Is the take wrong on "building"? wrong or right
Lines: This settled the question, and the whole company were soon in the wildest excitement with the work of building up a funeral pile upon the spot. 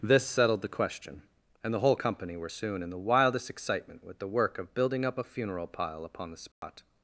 right